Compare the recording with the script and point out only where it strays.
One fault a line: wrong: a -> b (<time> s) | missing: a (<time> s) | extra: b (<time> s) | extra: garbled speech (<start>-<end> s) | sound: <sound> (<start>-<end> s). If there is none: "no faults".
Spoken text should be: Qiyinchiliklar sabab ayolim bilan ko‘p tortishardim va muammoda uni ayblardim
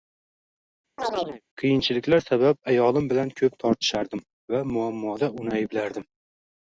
sound: chirp (1.0-1.4 s)